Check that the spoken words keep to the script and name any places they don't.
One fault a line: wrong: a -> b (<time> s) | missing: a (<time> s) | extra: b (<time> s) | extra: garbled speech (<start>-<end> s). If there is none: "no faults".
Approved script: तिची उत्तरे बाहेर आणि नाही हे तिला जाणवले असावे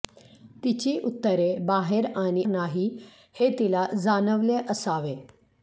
no faults